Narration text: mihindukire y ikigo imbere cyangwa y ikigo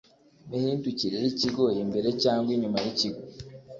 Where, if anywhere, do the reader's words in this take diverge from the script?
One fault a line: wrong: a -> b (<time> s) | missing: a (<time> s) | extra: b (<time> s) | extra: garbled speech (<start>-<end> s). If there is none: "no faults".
extra: inyuma (2.5 s)